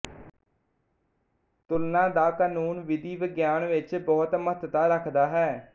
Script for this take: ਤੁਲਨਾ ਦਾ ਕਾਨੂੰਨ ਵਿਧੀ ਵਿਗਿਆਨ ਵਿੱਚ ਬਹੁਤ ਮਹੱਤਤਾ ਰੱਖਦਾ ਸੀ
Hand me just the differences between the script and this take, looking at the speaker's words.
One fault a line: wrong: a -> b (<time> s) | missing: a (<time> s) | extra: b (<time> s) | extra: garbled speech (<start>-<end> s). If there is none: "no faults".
wrong: ਸੀ -> ਹੈ (5.3 s)